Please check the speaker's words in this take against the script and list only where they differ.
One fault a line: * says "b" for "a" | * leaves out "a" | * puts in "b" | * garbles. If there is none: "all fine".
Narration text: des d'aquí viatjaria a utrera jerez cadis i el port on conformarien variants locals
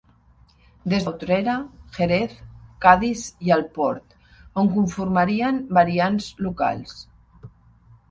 * leaves out "d'aquí viatjaria"